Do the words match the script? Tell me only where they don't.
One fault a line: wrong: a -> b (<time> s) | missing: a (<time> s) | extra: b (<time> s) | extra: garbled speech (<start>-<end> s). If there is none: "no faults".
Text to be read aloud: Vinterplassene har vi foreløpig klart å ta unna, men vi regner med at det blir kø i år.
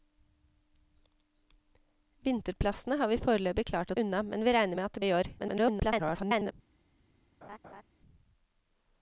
missing: ta (4.0 s)
missing: blir kø (5.0 s)
extra: garbled speech (5.4-6.5 s)